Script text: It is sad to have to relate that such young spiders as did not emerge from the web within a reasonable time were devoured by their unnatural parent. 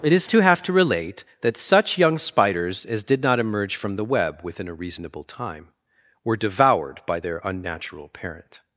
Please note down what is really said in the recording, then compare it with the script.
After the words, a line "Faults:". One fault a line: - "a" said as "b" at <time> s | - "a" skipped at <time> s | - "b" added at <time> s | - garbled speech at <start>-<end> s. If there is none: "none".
It is to have to relate that such young spiders as did not emerge from the web within a reasonable time were devoured by their unnatural parent.
Faults:
- "sad" skipped at 0.2 s